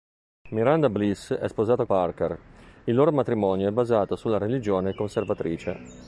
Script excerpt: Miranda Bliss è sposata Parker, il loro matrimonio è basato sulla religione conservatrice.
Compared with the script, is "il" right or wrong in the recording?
right